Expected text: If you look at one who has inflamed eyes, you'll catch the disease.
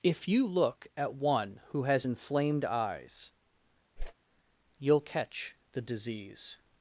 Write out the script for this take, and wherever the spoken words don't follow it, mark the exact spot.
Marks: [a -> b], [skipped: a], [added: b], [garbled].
If you look at one who has inflamed eyes, you'll catch the disease.